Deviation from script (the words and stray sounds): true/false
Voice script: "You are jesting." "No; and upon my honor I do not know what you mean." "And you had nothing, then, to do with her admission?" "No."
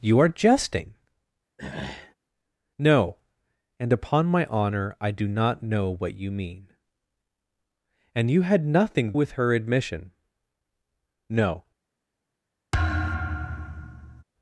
true